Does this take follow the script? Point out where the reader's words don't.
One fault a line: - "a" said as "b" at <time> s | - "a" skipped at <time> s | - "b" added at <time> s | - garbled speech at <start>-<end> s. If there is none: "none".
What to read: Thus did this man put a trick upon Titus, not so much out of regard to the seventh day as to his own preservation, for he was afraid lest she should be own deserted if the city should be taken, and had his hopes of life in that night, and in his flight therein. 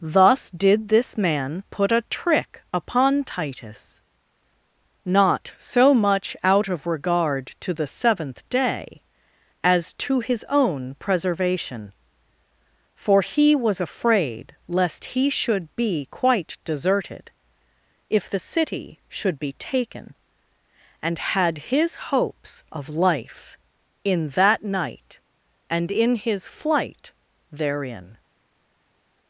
- "she" said as "he" at 15.1 s
- "own" said as "quite" at 16.1 s